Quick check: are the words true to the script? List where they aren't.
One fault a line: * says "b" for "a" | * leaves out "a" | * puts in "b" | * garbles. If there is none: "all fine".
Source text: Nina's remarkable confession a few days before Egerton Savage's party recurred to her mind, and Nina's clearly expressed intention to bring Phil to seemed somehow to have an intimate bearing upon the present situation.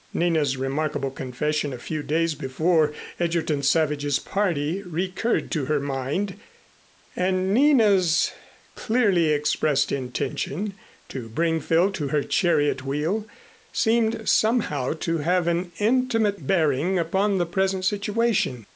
* puts in "her chariot wheel"